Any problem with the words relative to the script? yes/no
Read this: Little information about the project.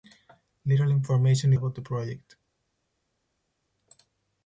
no